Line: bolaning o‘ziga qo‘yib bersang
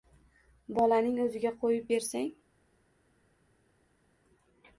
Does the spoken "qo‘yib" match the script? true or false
true